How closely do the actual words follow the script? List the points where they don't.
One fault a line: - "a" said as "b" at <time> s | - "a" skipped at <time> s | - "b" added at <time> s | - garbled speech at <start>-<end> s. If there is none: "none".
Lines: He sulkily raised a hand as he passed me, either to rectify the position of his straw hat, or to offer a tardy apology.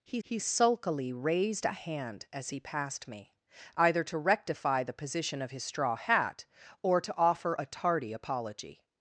- "he" added at 0.2 s